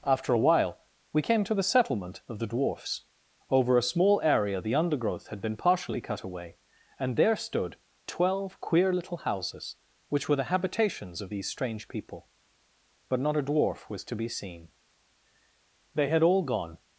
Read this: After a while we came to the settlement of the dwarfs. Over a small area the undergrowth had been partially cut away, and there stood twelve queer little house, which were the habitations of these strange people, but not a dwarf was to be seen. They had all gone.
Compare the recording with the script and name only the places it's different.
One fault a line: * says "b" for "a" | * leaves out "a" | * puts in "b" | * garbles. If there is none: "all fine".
* says "houses" for "house"